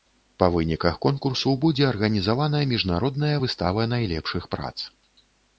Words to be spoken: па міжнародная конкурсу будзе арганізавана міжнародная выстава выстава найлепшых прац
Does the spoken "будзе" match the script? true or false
true